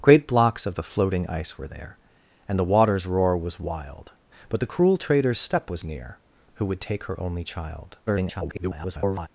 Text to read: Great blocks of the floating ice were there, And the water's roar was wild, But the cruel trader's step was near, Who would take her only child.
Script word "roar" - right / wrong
right